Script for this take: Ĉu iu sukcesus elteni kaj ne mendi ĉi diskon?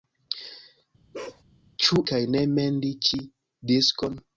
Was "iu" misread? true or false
true